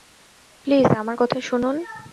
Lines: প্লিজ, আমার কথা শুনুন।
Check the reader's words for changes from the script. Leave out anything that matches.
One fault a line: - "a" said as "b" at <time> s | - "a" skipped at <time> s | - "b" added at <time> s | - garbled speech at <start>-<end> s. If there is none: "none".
none